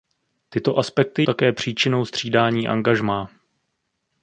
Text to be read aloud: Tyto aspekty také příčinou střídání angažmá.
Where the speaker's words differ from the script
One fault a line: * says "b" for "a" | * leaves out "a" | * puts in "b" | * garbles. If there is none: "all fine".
all fine